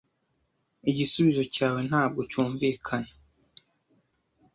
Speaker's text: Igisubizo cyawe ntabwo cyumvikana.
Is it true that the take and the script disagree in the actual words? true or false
false